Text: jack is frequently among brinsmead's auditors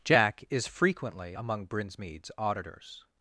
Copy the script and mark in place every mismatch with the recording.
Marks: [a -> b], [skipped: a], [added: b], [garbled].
jack is frequently among brinsmead's auditors